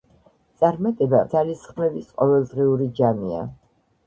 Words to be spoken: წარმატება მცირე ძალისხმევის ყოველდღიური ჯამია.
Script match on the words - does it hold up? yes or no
no